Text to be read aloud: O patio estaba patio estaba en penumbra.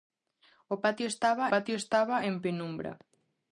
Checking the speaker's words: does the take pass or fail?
pass